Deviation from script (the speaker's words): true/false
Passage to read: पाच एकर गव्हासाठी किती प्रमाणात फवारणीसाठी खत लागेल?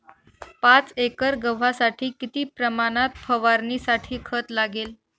false